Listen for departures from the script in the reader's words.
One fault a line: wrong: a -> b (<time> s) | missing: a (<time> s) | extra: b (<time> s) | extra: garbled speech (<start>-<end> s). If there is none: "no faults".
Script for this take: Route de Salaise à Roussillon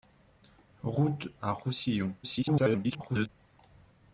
missing: de Salaise (1.3 s)
extra: garbled speech (2.2-3.3 s)